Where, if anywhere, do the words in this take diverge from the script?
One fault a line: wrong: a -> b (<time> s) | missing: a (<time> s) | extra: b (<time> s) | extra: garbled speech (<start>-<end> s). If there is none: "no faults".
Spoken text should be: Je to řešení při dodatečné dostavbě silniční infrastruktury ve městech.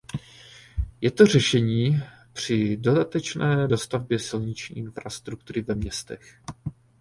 no faults